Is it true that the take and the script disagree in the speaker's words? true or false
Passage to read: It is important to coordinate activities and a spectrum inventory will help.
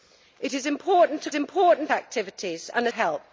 true